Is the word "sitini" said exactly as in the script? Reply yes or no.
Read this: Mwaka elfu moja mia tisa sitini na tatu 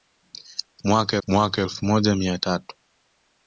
no